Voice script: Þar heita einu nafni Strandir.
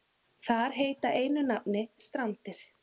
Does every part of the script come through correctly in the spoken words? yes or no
yes